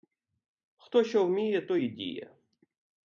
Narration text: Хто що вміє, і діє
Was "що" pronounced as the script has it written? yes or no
yes